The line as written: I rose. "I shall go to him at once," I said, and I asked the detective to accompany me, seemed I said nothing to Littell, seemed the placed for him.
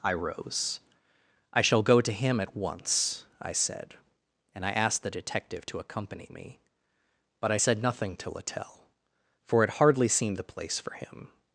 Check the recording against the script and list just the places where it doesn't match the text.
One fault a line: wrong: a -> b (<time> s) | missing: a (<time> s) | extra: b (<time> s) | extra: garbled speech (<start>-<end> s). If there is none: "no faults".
wrong: seemed -> but (7.4 s)
extra: for it hardly (9.5 s)
wrong: placed -> place (10.4 s)